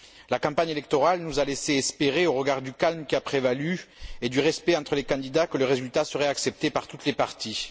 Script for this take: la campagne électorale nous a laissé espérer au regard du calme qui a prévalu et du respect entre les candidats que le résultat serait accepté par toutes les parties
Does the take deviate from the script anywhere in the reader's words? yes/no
no